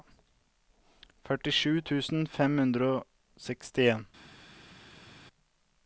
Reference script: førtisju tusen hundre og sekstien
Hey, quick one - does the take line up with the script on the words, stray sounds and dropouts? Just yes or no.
no